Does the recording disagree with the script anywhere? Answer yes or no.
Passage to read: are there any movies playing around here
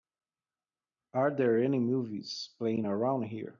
no